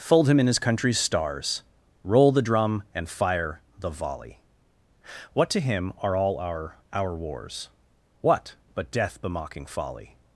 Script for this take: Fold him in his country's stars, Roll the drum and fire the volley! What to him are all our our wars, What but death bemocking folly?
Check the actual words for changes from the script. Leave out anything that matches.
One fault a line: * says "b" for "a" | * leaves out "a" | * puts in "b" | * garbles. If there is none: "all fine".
all fine